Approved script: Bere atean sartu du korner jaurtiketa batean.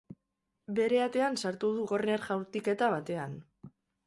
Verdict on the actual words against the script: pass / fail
pass